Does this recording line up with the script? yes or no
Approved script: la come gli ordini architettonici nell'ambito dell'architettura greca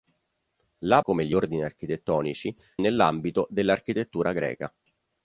yes